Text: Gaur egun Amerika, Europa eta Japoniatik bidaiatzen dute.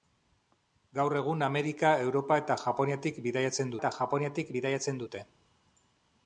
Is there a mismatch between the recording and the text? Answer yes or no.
yes